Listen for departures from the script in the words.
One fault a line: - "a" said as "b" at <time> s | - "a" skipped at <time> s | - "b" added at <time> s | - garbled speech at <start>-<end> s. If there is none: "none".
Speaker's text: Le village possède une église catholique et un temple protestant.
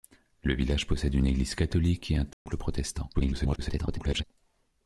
- garbled speech at 3.1-4.2 s